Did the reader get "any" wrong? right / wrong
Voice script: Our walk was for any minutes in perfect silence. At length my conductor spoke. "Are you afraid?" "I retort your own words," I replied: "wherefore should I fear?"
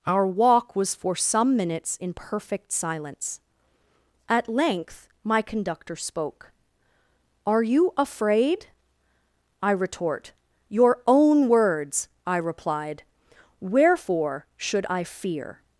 wrong